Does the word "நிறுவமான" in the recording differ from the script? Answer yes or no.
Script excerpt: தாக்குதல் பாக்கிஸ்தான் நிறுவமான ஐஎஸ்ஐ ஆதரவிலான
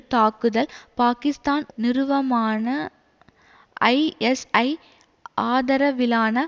no